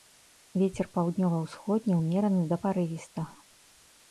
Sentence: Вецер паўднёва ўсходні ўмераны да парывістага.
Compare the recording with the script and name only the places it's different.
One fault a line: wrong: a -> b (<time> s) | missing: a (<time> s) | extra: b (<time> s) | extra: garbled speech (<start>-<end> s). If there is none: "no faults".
no faults